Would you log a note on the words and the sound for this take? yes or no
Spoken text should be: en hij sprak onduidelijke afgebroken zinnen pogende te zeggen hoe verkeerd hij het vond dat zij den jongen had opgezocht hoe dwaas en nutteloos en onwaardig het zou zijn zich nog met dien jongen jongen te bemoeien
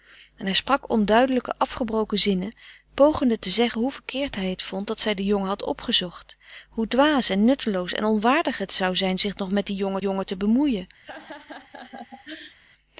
yes